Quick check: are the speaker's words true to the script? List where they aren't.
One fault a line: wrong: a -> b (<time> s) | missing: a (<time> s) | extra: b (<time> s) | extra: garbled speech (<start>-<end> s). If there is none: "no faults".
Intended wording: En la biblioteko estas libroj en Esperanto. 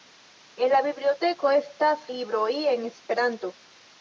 no faults